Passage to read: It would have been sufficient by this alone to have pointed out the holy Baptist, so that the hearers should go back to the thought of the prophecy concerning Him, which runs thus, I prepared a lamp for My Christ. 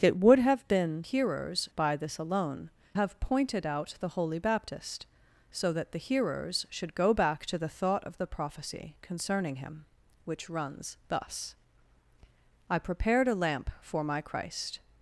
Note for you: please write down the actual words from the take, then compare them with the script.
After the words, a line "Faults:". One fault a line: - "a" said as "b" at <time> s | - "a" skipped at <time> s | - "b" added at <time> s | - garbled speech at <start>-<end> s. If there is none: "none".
It would have been hearers by this alone have pointed out the holy Baptist, so that the hearers should go back to the thought of the prophecy concerning Him, which runs thus, I prepared a lamp for My Christ.
Faults:
- "sufficient" said as "hearers" at 1.0 s
- "to" skipped at 2.7 s